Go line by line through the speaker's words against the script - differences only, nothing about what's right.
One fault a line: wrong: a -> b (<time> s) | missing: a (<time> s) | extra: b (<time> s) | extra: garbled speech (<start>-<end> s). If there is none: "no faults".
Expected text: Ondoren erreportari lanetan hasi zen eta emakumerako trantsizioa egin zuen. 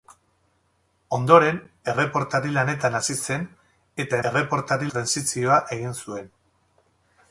wrong: emakumerako -> erreportari (4.3 s)